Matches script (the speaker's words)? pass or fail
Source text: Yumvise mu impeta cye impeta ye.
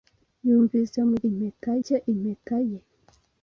pass